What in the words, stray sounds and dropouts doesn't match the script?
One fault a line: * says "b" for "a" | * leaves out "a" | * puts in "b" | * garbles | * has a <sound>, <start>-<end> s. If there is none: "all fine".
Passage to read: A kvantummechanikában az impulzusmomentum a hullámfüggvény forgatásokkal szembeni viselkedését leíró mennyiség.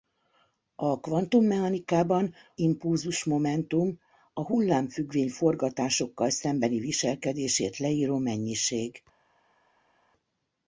* leaves out "az"